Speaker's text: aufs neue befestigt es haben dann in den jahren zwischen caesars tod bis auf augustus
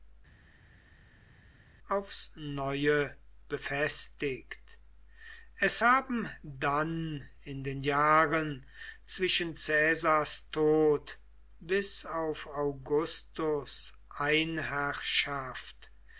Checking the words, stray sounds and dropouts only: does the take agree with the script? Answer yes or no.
yes